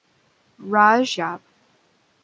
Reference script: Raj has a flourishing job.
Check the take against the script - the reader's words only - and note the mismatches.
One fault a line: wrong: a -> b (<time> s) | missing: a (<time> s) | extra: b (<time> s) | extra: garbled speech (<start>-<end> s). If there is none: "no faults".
missing: has a flourishing (1.2 s)